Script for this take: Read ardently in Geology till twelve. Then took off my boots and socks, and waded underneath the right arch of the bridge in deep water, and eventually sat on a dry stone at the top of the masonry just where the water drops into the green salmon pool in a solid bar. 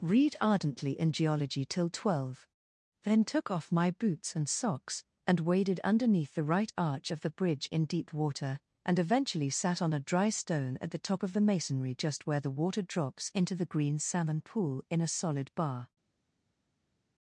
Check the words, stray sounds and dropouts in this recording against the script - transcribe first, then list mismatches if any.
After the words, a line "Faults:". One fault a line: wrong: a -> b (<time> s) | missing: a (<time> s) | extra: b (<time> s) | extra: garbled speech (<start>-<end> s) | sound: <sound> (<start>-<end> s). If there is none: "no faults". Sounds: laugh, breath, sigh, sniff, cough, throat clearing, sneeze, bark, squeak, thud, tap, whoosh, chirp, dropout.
Read ardently in Geology till twelve. Then took off my boots and socks, and waded underneath the right arch of the bridge in deep water, and eventually sat on a dry stone at the top of the masonry just where the water drops into the green salmon pool in a solid bar.
Faults:
no faults